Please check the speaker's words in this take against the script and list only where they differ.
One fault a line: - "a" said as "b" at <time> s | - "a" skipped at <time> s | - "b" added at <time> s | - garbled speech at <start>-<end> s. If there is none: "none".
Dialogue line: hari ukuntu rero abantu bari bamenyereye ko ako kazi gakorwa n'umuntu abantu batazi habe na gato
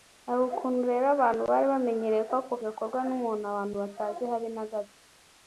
- "kazi" skipped at 2.5 s